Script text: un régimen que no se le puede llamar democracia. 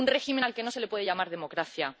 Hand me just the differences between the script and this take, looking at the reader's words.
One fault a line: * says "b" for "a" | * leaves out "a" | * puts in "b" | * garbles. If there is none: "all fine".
* puts in "al"